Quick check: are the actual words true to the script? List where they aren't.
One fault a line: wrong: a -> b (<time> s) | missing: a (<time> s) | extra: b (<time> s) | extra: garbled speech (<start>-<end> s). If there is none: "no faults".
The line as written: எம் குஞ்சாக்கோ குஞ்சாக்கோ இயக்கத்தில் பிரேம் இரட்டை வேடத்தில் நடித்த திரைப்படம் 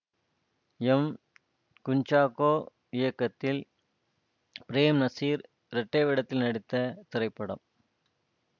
missing: குஞ்சாக்கோ (2.5 s)
extra: நசீர் (5.0 s)